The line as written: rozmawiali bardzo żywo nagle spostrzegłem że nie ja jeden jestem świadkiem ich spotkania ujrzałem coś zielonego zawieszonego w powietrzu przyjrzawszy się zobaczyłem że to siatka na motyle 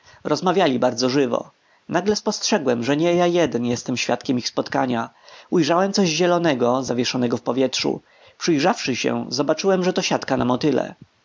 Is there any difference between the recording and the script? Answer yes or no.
no